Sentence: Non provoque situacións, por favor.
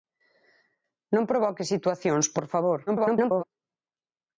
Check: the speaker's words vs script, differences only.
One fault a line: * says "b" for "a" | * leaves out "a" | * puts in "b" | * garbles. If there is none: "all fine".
* garbles